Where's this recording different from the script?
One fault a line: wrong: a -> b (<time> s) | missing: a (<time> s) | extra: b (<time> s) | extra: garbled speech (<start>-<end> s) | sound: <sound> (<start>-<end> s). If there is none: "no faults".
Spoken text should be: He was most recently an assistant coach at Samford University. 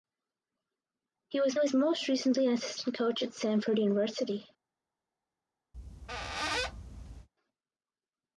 extra: was (1.6 s)
sound: squeak (5.7-7.3 s)